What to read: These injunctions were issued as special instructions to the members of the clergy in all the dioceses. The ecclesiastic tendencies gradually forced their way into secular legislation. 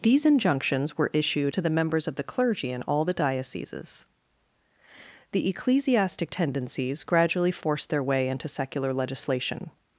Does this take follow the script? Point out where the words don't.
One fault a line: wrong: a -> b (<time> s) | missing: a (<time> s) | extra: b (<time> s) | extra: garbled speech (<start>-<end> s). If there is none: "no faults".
missing: as special instructions (1.5 s)